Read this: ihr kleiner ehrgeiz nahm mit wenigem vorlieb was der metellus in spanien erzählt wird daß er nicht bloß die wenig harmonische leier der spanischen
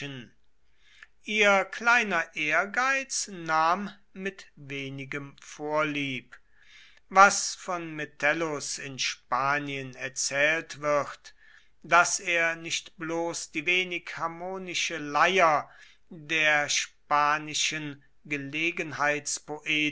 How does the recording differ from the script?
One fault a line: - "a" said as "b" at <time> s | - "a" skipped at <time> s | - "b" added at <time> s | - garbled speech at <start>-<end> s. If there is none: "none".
- "der" said as "von" at 7.5 s